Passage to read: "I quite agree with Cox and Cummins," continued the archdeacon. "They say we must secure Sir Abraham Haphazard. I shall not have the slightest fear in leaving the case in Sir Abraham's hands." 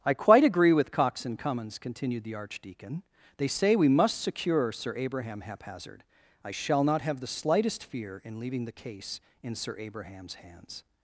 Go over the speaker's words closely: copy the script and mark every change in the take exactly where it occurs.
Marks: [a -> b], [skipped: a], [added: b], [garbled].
"I quite agree with Cox and Cummins," continued the archdeacon. "They say we must secure Sir Abraham Haphazard. I shall not have the slightest fear in leaving the case in Sir Abraham's hands."